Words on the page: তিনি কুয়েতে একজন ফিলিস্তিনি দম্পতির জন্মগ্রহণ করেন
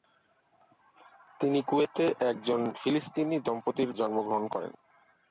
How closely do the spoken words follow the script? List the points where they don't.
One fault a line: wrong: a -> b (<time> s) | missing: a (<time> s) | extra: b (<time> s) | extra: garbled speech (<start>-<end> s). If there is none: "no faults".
no faults